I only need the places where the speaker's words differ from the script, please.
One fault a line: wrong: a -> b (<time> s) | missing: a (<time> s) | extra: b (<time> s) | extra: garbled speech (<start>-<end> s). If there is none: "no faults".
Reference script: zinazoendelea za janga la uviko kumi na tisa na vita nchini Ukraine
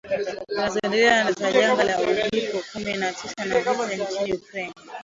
no faults